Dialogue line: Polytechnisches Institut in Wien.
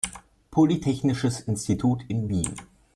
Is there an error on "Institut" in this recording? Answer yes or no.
no